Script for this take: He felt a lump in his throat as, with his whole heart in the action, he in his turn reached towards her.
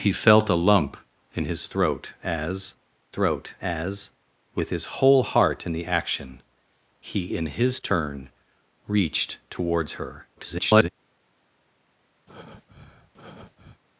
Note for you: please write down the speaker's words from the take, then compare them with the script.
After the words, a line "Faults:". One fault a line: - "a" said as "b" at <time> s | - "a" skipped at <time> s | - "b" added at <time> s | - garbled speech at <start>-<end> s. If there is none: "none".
He felt a lump in his throat as throat as, with his whole heart in the action, he in his turn reached towards her. [garbled]
Faults:
- "throat as" added at 3.1 s
- garbled speech at 10.4-10.9 s